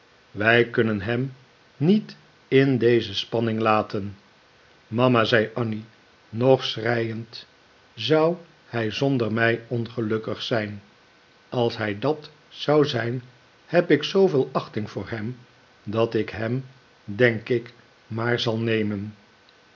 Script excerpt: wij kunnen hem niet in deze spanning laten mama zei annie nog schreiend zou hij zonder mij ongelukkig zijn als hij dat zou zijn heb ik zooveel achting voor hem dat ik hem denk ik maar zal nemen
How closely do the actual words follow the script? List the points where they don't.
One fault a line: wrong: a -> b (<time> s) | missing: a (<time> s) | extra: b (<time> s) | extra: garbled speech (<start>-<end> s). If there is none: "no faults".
no faults